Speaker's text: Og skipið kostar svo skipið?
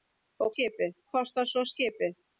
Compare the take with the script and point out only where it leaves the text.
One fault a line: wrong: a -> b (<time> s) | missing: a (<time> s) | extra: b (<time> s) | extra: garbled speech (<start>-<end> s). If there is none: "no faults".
no faults